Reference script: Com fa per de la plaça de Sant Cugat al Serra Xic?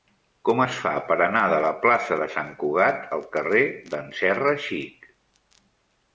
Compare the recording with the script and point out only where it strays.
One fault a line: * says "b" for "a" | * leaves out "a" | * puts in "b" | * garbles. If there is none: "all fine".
* puts in "es"
* puts in "anar"
* puts in "carrer d'en"